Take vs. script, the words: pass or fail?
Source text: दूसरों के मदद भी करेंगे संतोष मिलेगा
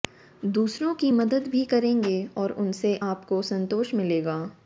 fail